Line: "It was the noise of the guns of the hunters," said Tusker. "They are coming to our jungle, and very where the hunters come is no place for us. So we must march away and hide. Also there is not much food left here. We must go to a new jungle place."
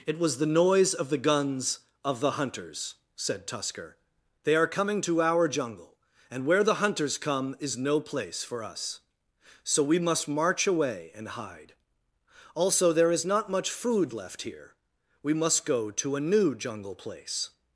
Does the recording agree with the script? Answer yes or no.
no